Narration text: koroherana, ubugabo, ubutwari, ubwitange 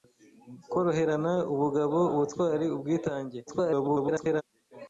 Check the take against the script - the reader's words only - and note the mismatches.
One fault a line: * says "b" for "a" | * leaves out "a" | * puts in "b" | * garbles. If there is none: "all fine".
* garbles